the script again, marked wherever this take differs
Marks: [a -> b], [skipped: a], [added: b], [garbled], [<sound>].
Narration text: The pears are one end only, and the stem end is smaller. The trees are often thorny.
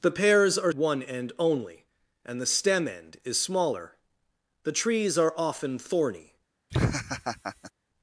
The pears are one end only, and the stem end is smaller. The trees are often thorny. [laugh]